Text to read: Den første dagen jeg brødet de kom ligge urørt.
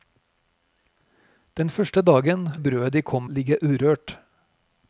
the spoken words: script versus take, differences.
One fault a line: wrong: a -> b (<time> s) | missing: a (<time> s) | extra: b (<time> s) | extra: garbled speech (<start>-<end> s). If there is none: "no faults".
no faults